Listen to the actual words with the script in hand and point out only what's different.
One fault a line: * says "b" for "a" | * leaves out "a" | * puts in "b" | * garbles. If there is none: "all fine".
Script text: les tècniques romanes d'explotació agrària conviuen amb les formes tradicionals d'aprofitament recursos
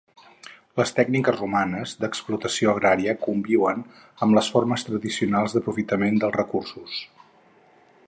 * puts in "dels"